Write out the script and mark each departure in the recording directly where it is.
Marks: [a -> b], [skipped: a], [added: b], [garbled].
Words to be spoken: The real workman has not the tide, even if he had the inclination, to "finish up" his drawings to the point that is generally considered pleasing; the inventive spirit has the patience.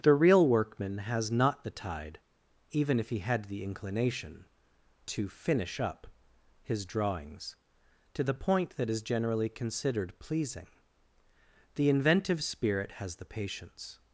The real workman has not the tide, even if he had the inclination, to "finish up" his drawings to the point that is generally considered pleasing; the inventive spirit has the patience.